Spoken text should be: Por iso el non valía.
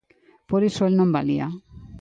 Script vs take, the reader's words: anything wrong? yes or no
no